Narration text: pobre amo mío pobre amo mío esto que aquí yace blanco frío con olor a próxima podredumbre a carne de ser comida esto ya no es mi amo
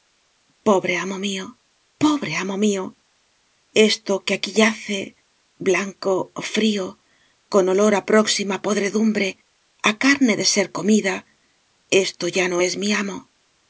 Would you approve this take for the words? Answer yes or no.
yes